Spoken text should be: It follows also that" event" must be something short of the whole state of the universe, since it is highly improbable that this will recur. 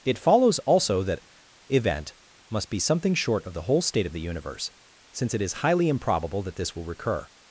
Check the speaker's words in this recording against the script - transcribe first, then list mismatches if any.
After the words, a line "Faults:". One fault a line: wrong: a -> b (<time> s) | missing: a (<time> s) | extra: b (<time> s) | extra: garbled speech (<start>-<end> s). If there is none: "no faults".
It follows also that" event" must be something short of the whole state of the universe, since it is highly improbable that this will recur.
Faults:
no faults